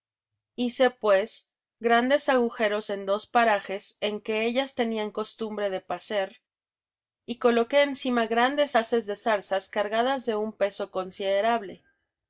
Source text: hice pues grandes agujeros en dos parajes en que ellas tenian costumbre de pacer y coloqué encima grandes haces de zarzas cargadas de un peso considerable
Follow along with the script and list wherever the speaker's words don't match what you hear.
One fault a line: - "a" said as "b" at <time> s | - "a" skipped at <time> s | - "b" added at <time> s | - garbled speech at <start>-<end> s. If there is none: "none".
none